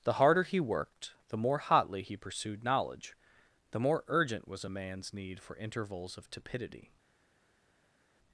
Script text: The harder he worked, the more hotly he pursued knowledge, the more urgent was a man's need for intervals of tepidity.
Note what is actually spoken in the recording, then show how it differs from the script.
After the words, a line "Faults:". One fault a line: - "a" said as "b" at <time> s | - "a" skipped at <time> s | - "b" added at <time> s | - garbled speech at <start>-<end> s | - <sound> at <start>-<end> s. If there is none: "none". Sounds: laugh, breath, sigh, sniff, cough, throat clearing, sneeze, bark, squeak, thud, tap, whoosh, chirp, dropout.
The harder he worked, the more hotly he pursued knowledge, the more urgent was a man's need for intervals of tepidity.
Faults:
none